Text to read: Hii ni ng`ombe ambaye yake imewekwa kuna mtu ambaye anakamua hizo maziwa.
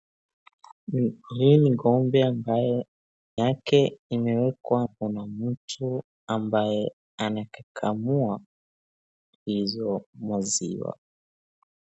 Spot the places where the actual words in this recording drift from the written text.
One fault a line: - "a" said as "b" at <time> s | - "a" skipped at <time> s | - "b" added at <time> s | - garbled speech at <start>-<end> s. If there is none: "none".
none